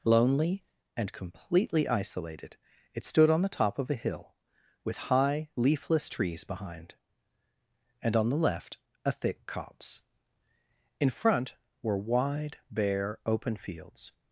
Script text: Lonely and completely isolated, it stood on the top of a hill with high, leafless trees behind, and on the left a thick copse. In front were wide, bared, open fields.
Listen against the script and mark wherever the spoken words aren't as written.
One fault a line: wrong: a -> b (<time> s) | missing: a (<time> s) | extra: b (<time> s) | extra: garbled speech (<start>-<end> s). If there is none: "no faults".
wrong: bared -> bare (12.7 s)